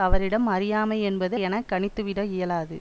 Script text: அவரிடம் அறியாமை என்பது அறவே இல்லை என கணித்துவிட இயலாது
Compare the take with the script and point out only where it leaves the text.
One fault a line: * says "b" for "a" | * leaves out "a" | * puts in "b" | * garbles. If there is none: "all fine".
* leaves out "அறவே இல்லை"